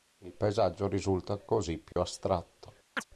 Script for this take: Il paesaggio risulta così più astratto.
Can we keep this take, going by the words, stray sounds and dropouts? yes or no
no